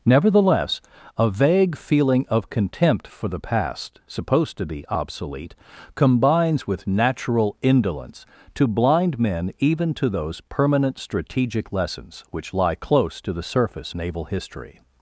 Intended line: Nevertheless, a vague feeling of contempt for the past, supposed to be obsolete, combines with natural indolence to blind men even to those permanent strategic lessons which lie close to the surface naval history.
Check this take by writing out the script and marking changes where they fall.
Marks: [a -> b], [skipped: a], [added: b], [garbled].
Nevertheless, a vague feeling of contempt for the past, supposed to be obsolete, combines with natural indolence to blind men even to those permanent strategic lessons which lie close to the surface naval history.